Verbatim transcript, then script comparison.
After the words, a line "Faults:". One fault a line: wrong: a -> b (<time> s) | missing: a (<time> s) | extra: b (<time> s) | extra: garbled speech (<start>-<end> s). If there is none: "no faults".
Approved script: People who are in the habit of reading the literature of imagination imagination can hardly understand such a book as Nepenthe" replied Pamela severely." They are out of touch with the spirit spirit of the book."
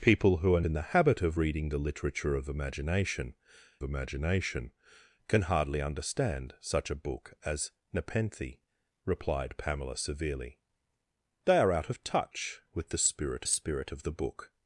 People who are in the habit of reading the literature of imagination imagination can hardly understand such a book as Nepenthe" replied Pamela severely." They are out of touch with the spirit spirit of the book."
Faults:
no faults